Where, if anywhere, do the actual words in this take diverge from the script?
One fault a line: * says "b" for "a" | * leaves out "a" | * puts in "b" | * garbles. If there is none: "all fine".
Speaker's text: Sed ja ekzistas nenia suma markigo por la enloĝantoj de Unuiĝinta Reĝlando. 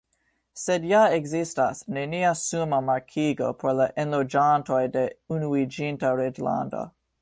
all fine